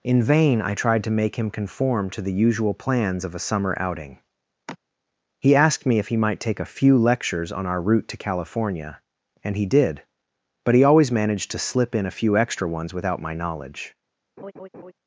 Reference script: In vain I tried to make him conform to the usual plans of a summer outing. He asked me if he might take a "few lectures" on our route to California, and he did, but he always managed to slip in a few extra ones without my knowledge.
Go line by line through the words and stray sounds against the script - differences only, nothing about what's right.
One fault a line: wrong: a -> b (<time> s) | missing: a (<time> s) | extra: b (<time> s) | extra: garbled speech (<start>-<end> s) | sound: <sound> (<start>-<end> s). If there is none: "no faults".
sound: sigh (4.7-4.8 s)
sound: laugh (14.4-14.9 s)